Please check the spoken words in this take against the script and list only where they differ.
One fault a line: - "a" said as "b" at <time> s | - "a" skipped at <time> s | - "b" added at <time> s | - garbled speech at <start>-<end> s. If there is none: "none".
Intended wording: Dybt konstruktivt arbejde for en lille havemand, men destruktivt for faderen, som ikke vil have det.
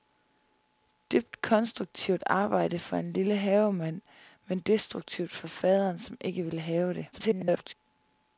- garbled speech at 7.1-7.7 s